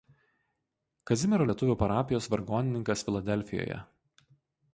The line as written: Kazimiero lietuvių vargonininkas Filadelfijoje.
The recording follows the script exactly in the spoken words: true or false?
false